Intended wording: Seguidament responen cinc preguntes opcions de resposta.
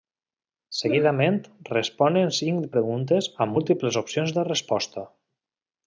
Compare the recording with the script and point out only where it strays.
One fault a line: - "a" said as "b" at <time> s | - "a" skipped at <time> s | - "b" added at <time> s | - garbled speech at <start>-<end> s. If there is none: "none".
- "amb múltiples" added at 3.5 s